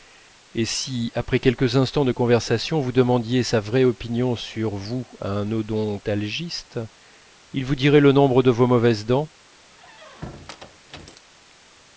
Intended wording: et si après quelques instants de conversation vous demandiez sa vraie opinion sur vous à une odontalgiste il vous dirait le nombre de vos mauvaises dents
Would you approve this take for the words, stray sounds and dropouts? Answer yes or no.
no